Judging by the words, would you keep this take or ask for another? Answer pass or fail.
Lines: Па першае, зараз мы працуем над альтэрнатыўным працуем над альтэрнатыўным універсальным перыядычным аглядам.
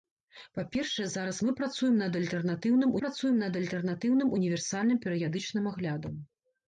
pass